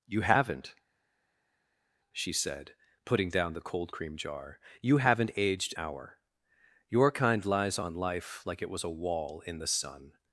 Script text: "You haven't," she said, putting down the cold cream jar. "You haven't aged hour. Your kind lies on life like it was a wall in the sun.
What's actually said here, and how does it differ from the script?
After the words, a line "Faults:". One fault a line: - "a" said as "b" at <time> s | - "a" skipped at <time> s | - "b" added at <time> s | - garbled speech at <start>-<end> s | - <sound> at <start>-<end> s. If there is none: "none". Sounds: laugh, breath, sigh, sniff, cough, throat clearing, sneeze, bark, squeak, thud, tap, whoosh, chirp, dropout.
"You haven't," she said, putting down the cold cream jar. "You haven't aged hour. Your kind lies on life like it was a wall in the sun.
Faults:
none